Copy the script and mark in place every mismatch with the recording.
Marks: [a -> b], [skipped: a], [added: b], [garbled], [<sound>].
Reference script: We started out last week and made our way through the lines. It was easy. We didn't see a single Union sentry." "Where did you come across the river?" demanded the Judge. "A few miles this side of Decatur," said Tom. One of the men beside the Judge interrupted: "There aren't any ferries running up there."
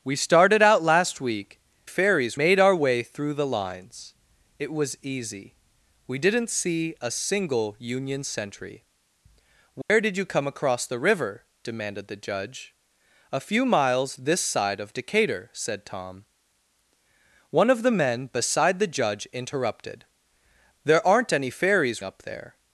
We started out last week [and -> ferries] made our way through the lines. It was easy. We didn't see a single Union sentry." "Where [dropout] did you come across the river?" demanded the Judge. "A few miles this side of Decatur," said Tom. One of the men beside the Judge interrupted: "There aren't any ferries [skipped: running] up there."